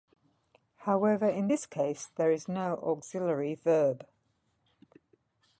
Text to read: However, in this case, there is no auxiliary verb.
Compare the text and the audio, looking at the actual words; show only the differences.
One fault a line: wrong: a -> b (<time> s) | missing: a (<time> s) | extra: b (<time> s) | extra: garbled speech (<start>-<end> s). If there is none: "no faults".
no faults